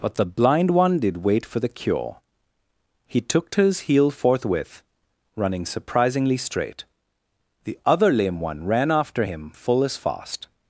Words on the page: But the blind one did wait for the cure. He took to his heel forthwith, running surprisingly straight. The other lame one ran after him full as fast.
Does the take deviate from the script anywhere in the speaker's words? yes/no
no